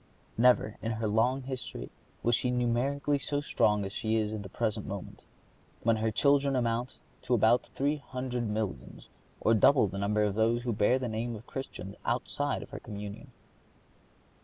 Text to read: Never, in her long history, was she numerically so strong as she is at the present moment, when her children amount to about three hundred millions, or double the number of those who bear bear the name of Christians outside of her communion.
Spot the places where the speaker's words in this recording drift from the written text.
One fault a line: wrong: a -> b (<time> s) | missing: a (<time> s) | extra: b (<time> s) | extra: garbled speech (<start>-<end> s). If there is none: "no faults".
missing: bear (11.0 s)